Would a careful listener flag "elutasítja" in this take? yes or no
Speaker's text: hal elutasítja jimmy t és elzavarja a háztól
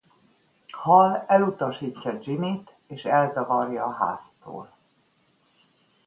no